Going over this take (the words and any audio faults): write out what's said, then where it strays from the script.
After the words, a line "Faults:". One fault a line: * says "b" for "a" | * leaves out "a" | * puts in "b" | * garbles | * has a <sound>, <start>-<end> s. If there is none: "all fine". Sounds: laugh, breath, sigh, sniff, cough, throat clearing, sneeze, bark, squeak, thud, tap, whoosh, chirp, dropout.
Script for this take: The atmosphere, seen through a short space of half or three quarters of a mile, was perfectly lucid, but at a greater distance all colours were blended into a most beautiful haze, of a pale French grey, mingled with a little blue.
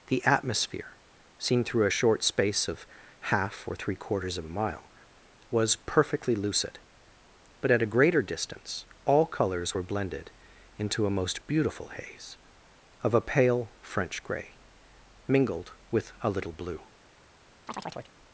The atmosphere, seen through a short space of half or three quarters of a mile, was perfectly lucid, but at a greater distance all colours were blended into a most beautiful haze, of a pale French grey, mingled with a little blue.
Faults:
* has a chirp, 17.7-18.1 s